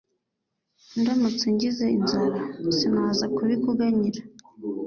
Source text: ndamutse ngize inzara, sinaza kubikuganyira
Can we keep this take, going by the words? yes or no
yes